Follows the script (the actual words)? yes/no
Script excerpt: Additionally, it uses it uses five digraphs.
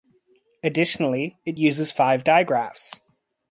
no